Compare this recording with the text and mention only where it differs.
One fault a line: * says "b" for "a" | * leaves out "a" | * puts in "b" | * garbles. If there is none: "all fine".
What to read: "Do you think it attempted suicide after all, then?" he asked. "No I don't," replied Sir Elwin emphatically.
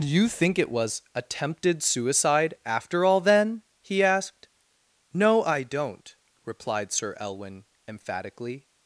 * puts in "was"